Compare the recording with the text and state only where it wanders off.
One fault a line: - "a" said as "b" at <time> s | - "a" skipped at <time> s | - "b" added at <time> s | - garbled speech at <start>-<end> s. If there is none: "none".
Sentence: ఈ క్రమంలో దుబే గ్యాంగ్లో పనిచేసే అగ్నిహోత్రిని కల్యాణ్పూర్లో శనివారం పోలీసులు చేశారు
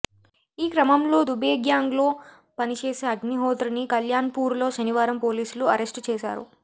- "అరెస్టు" added at 5.7 s